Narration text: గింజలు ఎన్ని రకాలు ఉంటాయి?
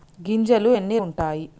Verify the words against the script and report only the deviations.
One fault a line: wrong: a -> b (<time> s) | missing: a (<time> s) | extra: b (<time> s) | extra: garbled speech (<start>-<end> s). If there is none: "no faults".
missing: రకాలు (1.0 s)